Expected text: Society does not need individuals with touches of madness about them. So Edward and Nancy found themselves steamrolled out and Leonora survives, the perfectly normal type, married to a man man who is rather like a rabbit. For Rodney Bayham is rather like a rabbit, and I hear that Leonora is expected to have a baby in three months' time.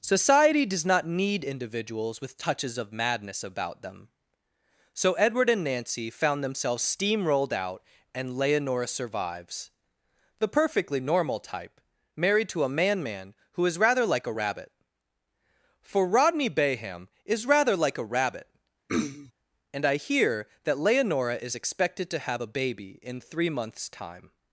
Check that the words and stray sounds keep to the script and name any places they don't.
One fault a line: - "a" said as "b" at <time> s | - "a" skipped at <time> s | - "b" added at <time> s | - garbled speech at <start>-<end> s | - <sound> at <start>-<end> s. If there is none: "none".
- throat clearing at 18.9-19.3 s